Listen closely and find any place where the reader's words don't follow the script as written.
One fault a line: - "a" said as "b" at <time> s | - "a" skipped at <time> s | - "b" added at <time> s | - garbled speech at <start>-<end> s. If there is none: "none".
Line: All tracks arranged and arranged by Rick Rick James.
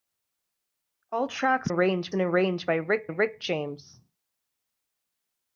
none